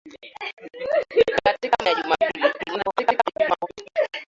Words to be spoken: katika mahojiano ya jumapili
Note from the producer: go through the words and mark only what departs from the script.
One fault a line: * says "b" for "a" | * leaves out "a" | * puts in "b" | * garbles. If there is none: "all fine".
* leaves out "mahojiano"
* garbles